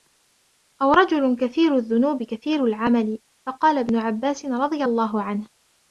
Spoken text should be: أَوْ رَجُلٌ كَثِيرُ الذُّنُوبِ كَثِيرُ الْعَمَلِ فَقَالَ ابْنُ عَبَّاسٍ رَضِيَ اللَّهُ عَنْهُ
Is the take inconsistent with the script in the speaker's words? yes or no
no